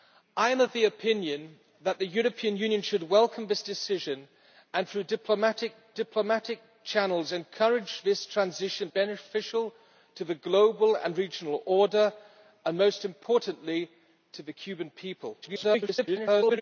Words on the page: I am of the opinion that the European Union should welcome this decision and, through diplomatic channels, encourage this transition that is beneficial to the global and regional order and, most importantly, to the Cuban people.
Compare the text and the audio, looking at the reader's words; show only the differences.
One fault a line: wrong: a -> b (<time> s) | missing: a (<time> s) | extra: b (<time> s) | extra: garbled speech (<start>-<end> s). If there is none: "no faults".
extra: diplomatic (5.9 s)
missing: that is (8.9 s)
extra: garbled speech (15.4-16.6 s)